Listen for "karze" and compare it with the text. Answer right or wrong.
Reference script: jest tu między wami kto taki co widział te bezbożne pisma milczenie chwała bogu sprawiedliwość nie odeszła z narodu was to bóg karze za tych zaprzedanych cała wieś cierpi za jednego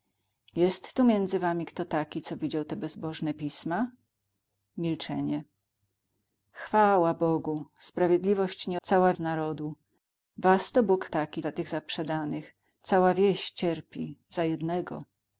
wrong